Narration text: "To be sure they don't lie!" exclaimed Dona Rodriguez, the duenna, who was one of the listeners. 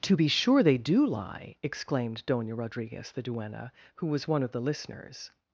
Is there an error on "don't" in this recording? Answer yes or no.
yes